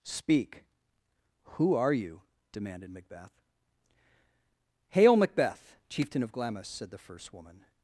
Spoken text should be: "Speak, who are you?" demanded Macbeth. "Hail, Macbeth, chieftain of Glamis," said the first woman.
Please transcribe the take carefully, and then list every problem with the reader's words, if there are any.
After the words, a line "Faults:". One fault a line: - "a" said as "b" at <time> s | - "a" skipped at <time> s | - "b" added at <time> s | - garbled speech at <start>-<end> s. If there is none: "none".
"Speak, who are you?" demanded Macbeth. "Hail, Macbeth, chieftain of Glamis," said the first woman.
Faults:
none